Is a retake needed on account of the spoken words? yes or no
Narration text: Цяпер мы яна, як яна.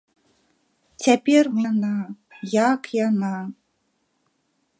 no